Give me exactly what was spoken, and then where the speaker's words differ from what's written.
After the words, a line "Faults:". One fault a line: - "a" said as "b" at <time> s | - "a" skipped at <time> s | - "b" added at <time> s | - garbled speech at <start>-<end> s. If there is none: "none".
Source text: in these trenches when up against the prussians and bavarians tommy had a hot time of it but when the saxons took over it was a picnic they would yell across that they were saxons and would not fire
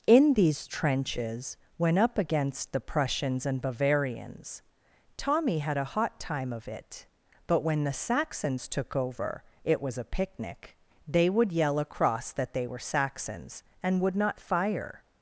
in these trenches when up against the prussians and bavarians tommy had a hot time of it but when the saxons took over it was a picnic they would yell across that they were saxons and would not fire
Faults:
none